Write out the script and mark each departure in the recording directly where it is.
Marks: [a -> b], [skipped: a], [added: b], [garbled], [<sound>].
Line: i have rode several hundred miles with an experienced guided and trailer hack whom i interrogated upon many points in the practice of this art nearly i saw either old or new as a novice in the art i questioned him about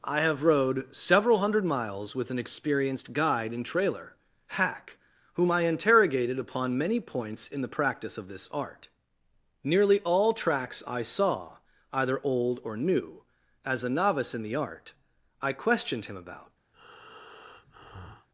i have rode several hundred miles with an experienced [guided -> guide] and trailer hack whom i interrogated upon many points in the practice of this art nearly [added: all tracks] i saw either old or new as a novice in the art i questioned him about [breath]